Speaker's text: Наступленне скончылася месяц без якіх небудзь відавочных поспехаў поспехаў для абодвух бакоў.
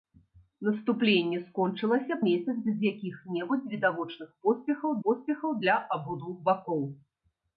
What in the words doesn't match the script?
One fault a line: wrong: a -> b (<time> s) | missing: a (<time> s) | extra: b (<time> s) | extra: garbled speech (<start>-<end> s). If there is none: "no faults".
no faults